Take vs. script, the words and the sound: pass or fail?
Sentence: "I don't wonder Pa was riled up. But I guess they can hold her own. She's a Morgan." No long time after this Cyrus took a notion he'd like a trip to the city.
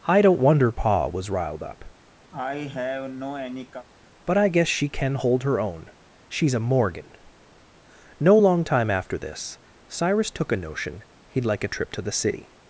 fail